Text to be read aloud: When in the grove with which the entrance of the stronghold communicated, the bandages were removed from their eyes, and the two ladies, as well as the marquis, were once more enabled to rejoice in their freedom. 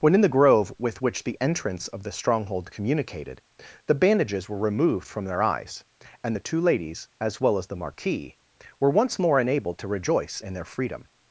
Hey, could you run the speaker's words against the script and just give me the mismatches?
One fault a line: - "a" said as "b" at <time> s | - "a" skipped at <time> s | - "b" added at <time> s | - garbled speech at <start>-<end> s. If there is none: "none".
none